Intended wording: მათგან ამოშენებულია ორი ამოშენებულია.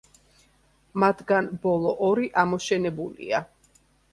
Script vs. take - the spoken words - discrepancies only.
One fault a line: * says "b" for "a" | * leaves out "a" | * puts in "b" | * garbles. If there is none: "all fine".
* says "ბოლო" for "ამოშენებულია"